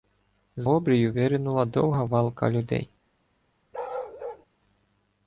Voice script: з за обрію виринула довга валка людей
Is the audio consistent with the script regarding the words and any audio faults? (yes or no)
no